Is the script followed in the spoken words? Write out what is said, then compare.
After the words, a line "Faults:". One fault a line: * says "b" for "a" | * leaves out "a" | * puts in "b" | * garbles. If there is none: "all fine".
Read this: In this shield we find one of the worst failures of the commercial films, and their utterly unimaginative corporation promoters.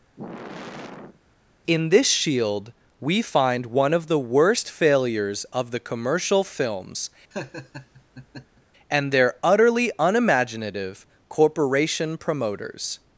In this shield we find one of the worst failures of the commercial films, and their utterly unimaginative corporation promoters.
Faults:
all fine